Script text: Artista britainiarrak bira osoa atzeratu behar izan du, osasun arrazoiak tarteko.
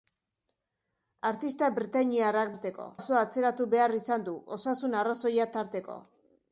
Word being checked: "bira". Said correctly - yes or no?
no